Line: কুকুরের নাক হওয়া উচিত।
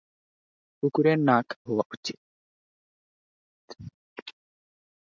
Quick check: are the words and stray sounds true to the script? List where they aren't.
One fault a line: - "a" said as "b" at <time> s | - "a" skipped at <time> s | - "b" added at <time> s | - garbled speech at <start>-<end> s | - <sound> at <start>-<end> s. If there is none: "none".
none